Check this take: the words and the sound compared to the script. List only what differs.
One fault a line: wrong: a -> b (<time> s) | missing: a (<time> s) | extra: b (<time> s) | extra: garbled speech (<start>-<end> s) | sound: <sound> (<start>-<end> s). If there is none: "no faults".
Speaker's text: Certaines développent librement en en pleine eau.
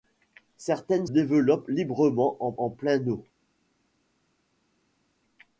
no faults